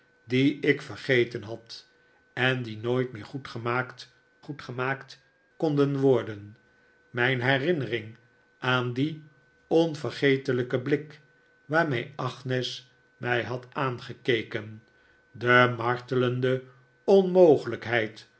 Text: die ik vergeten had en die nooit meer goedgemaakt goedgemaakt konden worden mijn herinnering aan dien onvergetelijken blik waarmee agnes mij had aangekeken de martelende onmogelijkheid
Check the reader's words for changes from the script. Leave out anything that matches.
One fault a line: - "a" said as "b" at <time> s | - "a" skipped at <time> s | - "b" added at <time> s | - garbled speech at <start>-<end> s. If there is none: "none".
none